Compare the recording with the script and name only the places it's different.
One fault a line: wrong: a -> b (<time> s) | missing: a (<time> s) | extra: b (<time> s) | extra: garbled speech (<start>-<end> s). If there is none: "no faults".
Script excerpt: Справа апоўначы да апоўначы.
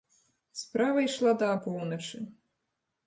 wrong: апоўначы -> ішла (1.1 s)